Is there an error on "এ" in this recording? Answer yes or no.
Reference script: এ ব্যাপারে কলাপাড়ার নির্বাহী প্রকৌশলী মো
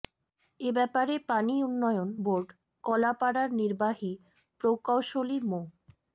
no